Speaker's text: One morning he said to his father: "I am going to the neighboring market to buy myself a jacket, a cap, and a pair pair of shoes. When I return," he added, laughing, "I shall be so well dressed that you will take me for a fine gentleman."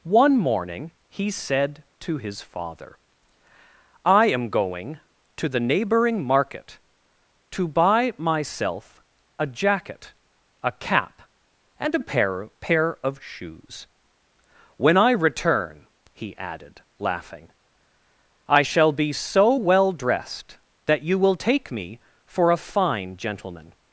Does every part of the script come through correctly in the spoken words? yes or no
yes